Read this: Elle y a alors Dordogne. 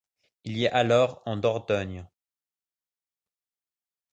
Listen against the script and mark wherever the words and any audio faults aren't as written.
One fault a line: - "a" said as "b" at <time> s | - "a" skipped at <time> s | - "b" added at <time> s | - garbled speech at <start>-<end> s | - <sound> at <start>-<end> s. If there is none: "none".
- "Elle" said as "Il" at 0.5 s
- "en" added at 1.2 s